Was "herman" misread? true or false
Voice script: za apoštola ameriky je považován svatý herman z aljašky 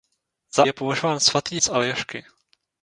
true